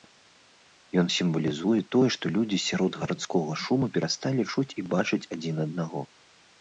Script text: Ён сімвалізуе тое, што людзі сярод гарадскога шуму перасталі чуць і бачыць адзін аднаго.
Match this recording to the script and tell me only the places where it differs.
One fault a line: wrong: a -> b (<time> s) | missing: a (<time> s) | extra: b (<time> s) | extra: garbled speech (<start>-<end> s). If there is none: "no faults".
no faults